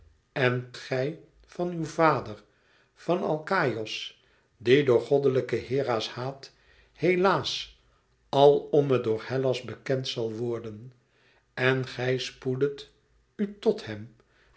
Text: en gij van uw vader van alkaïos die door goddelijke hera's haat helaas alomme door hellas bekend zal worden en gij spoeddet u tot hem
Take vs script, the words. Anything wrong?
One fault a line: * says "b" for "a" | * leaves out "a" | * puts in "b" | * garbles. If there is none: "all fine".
all fine